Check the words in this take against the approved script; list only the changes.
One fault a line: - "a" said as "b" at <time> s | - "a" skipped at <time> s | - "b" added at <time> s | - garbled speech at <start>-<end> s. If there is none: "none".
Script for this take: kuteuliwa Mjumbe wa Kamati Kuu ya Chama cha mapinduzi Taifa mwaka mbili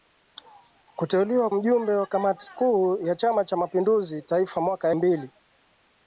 none